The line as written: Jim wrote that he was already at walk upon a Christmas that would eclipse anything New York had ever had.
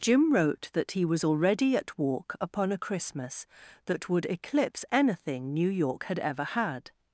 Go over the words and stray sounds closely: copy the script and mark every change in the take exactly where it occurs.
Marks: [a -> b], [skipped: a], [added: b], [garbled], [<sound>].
Jim wrote that he was already at walk upon a Christmas that would eclipse anything New York had ever had.